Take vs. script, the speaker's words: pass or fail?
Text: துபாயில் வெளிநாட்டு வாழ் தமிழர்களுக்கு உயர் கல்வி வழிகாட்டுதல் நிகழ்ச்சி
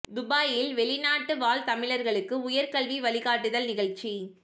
pass